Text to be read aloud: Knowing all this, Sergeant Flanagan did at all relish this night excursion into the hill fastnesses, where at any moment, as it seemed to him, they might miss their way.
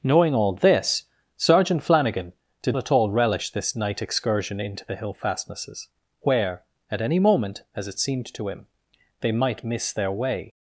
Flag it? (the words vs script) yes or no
no